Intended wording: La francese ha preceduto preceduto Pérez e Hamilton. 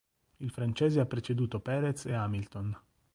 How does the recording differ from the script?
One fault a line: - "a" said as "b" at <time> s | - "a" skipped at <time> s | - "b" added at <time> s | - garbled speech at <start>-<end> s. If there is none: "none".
- "La" said as "Il" at 0.4 s
- "preceduto" skipped at 1.6 s